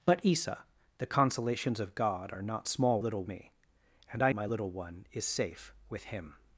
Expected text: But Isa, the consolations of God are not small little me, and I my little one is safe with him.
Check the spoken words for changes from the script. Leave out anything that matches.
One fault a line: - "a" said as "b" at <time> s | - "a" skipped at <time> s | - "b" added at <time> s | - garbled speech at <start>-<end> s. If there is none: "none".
none